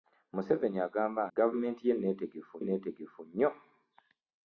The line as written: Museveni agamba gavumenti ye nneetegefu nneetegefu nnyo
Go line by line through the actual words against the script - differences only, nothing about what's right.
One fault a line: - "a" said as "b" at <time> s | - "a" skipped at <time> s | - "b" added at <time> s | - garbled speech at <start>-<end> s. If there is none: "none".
none